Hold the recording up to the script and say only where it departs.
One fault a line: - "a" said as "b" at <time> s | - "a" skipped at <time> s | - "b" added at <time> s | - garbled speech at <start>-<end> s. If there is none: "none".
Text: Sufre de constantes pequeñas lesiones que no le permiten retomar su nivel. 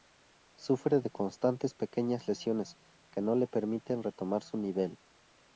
none